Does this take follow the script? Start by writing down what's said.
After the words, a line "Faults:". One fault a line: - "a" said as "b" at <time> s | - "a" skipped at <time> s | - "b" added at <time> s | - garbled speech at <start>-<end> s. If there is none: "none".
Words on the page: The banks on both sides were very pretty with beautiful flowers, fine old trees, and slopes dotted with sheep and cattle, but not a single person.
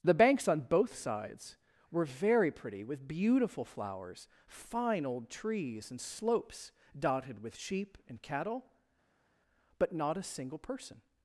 The banks on both sides were very pretty with beautiful flowers, fine old trees, and slopes dotted with sheep and cattle, but not a single person.
Faults:
none